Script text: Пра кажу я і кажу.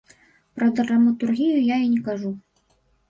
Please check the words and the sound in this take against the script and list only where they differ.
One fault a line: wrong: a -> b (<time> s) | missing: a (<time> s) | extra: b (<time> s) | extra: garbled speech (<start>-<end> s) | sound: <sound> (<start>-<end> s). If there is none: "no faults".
wrong: кажу -> драматургію (0.7 s)
extra: не (1.9 s)